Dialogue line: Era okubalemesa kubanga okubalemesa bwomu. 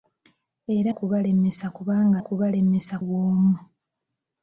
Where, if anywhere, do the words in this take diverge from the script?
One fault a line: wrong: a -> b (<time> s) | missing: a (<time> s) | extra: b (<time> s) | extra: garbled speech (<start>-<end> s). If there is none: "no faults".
no faults